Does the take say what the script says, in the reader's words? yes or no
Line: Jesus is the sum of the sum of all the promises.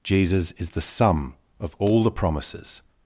no